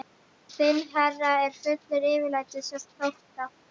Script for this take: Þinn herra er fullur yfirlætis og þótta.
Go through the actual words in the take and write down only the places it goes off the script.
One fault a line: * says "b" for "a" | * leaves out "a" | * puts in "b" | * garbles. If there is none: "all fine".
all fine